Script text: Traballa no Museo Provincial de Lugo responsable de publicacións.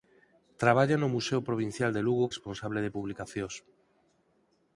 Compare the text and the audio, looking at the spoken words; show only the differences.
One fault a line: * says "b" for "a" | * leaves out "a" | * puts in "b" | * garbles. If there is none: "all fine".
all fine